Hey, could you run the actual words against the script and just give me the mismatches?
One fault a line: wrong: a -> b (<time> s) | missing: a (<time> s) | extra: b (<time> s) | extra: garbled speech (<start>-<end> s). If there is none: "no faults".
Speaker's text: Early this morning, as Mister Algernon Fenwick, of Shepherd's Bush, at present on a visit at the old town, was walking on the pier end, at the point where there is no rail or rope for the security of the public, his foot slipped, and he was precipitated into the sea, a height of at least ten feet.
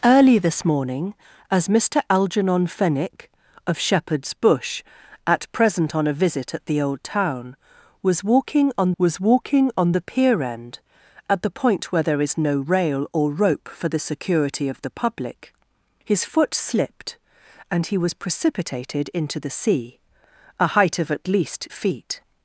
extra: was walking on (9.0 s)
missing: ten (21.7 s)